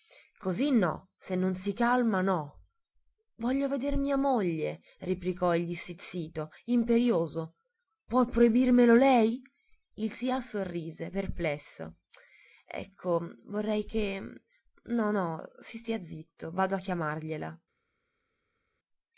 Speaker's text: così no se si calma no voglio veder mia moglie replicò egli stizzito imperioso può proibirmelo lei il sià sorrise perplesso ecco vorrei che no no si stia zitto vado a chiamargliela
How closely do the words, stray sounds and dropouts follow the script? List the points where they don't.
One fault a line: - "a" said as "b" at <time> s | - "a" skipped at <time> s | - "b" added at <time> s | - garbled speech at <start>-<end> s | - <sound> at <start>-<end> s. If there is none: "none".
- "non" added at 1.4 s